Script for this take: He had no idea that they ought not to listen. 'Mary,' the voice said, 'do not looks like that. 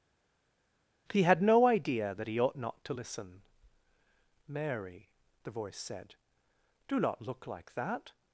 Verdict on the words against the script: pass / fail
fail